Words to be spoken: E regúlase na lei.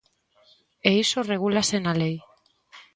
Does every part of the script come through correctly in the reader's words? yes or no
no